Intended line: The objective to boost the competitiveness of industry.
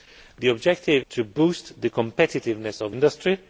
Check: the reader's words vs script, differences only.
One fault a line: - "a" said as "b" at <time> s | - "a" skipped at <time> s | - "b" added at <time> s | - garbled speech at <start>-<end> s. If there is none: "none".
none